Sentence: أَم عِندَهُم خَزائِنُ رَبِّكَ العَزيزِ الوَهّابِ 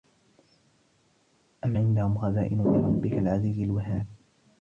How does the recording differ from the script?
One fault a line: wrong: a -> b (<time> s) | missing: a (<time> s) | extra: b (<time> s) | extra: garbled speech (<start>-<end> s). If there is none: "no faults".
no faults